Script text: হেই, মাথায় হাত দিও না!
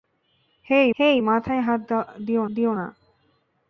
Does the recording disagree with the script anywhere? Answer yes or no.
yes